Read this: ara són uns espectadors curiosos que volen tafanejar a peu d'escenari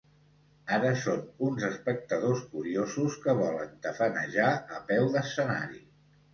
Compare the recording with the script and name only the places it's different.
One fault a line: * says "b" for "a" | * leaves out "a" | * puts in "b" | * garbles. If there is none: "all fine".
all fine